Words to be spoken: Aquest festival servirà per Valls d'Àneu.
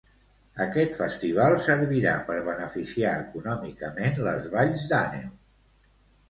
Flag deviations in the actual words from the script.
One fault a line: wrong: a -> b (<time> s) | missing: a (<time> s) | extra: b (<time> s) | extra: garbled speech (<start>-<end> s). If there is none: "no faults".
extra: beneficiar econòmicament les (2.5 s)